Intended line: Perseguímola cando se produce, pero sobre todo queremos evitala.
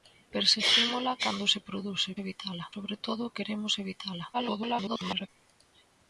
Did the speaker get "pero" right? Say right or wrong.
wrong